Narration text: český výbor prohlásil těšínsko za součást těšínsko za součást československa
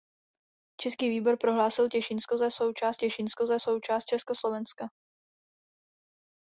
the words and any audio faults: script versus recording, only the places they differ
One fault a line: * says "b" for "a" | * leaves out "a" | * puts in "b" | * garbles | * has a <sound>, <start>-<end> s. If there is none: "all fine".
all fine